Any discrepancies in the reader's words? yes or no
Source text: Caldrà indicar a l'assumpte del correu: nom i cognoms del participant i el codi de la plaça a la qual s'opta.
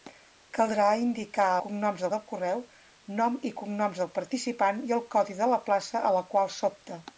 yes